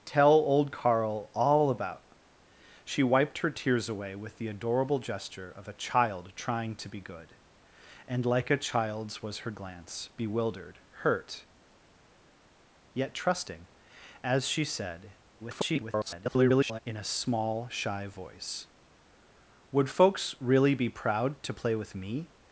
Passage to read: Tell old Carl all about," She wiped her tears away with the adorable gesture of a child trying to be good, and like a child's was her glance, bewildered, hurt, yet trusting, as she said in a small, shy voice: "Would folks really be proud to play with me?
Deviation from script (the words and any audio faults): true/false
true